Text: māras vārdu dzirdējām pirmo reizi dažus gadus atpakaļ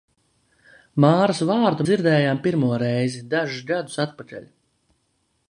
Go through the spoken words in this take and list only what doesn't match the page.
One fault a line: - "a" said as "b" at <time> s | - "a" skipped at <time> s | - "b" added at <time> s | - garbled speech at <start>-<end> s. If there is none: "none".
none